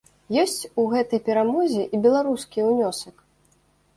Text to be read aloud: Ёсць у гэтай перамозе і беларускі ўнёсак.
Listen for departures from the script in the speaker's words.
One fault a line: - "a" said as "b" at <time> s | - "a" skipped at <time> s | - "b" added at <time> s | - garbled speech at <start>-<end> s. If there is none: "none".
none